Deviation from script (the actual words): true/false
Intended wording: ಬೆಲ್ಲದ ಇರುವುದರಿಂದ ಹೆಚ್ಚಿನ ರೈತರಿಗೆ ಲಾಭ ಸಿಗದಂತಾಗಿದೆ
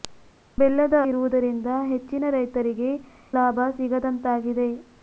false